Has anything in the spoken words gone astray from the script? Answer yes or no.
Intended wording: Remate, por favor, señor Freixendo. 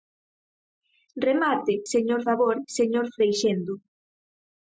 yes